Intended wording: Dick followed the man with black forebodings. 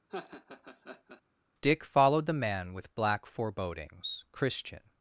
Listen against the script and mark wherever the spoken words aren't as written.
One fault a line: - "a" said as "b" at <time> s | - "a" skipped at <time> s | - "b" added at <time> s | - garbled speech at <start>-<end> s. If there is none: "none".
- "christian" added at 4.3 s